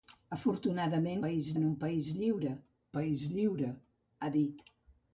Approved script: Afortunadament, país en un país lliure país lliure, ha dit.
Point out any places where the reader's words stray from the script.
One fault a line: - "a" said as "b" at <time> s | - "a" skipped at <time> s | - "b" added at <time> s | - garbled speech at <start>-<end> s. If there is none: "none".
none